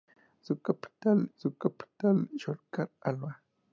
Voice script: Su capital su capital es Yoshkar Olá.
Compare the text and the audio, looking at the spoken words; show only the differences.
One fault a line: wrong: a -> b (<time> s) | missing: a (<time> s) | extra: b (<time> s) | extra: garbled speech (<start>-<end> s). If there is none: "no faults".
no faults